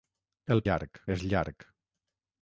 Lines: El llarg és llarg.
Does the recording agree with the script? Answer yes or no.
yes